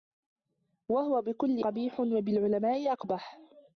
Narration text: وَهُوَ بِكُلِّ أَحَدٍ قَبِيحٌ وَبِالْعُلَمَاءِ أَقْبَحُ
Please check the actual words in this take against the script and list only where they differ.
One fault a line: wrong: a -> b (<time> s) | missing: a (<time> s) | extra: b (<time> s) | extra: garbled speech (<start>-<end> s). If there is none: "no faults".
missing: أَحَدٍ (1.6 s)